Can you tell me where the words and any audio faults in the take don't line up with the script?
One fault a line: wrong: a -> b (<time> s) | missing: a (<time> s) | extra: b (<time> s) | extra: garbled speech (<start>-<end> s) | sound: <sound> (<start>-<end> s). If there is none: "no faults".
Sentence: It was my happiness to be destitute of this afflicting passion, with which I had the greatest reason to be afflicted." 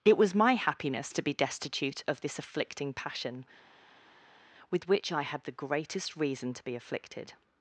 no faults